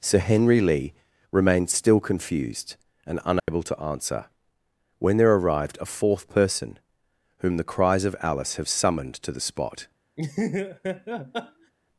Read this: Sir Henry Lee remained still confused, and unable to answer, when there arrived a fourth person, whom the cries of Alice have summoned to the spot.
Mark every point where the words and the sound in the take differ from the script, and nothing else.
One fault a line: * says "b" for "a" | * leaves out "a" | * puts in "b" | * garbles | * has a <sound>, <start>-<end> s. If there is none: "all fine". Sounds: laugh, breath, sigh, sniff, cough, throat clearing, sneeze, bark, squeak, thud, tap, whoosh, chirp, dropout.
* has a dropout, 3.4-3.5 s
* has a laugh, 10.2-11.7 s